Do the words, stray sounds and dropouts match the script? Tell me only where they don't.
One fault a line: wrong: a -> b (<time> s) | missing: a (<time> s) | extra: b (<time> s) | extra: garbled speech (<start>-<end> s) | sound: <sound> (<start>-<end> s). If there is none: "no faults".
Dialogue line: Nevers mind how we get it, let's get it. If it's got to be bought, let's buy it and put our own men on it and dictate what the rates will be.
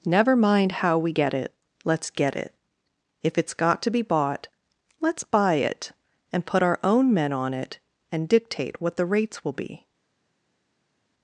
wrong: Nevers -> Never (0.1 s)